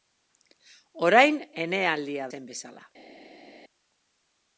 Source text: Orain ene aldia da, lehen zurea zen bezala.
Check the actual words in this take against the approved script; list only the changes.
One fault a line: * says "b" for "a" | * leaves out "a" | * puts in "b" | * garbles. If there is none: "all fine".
* leaves out "da lehen zurea"